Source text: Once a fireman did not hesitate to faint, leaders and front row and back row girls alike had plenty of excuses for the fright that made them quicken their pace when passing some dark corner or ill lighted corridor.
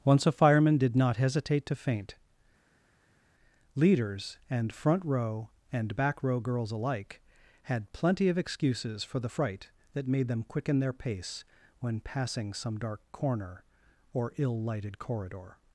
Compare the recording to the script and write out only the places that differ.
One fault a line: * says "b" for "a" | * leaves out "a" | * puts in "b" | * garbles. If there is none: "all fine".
all fine